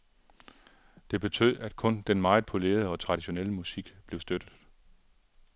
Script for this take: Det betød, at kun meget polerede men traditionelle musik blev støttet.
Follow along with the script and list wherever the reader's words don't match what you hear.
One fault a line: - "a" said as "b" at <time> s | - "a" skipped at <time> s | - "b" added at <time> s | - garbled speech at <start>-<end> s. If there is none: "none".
- "den" added at 2.0 s
- "men" said as "og" at 2.9 s